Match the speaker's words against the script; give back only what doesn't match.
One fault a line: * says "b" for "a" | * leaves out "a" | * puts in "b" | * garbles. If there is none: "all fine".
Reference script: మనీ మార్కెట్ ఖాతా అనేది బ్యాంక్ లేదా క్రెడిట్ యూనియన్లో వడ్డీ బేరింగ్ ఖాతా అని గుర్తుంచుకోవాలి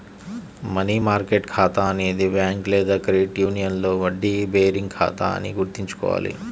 all fine